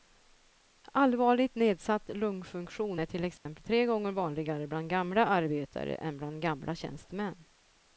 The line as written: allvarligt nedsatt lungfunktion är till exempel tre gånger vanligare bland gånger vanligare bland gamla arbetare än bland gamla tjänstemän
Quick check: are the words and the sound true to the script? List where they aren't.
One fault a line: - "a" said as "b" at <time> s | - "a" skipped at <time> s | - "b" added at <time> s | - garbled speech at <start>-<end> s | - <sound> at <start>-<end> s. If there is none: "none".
- dropout at 3.4-3.5 s
- "gånger vanligare bland" skipped at 4.9 s